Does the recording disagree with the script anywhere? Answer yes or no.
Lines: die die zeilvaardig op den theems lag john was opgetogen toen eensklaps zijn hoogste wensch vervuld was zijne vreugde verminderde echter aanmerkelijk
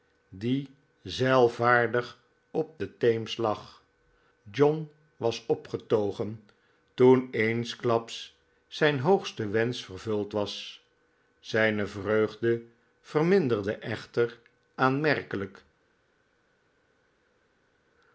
yes